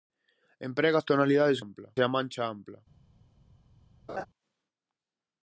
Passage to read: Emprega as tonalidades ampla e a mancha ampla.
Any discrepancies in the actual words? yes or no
no